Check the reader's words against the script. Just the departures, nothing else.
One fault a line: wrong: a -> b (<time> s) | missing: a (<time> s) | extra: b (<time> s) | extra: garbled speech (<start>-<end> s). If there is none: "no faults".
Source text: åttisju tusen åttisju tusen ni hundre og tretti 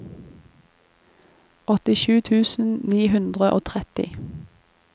missing: åttisju tusen (2.7 s)